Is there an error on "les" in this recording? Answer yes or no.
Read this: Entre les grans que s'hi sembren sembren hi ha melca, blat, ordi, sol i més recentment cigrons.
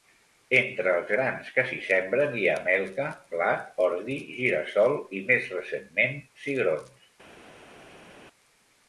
yes